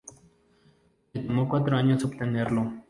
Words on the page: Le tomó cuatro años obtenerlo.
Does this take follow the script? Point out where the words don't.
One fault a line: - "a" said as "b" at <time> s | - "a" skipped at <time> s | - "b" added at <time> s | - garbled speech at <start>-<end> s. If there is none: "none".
none